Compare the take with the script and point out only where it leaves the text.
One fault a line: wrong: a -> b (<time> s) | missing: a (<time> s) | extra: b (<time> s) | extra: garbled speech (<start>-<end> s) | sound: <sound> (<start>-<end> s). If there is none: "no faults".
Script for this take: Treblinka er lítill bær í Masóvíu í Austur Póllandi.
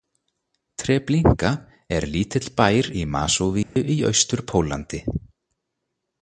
sound: dropout (3.6-3.8 s)